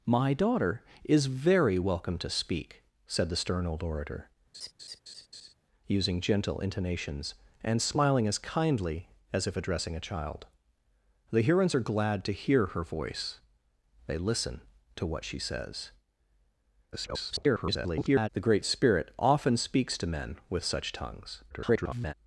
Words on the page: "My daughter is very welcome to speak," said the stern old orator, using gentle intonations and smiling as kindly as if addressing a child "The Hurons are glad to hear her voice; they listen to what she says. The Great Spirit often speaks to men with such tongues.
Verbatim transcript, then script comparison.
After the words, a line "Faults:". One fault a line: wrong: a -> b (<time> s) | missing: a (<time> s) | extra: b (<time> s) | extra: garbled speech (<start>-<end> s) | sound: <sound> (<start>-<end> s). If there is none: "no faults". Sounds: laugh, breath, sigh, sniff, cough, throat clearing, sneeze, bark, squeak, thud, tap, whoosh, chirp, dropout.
"My daughter is very welcome to speak," said the stern old orator, using gentle intonations and smiling as kindly as if addressing a child "The Hurons are glad to hear her voice; they listen to what she says. [garbled] The Great Spirit often speaks to men with such tongues. [garbled]
Faults:
sound: laugh (4.5-5.5 s)
extra: garbled speech (16.9-18.3 s)
extra: garbled speech (21.5-22.1 s)